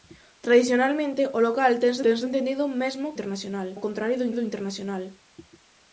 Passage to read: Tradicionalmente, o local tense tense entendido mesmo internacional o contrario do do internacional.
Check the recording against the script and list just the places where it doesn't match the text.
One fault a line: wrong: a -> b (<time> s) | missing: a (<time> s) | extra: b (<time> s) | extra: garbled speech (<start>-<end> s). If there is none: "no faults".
no faults